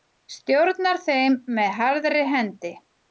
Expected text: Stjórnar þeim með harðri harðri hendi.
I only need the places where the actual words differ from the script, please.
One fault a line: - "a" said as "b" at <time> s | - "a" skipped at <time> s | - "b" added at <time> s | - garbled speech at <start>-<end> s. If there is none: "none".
- "harðri" skipped at 2.2 s